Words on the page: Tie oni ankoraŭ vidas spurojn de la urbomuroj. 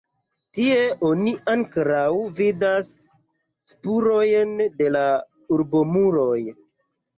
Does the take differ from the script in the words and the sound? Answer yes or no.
no